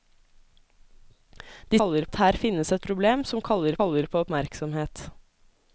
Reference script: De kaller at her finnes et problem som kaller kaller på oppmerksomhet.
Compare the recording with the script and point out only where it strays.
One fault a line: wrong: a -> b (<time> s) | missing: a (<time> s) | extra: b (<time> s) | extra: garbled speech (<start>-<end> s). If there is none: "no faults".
no faults